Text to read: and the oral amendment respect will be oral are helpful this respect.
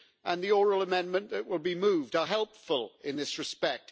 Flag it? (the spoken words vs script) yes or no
yes